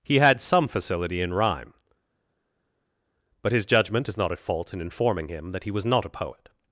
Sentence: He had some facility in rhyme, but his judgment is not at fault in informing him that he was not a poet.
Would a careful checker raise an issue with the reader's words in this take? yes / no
no